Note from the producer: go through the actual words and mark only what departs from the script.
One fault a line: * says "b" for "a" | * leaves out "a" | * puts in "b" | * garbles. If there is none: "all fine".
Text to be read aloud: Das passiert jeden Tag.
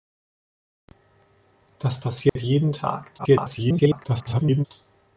* garbles